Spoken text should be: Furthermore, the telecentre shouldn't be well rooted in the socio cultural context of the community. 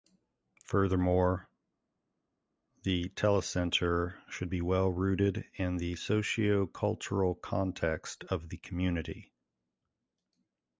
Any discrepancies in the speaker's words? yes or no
yes